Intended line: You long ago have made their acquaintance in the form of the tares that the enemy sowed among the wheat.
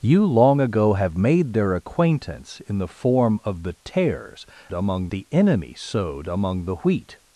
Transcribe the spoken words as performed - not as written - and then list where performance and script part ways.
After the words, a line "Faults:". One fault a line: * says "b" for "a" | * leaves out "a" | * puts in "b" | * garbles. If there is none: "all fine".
You long ago have made their acquaintance in the form of the tares among the enemy sowed among the wheat.
Faults:
* says "among" for "that"